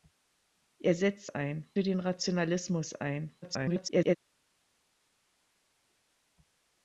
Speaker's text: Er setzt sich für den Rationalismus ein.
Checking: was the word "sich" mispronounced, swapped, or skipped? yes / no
yes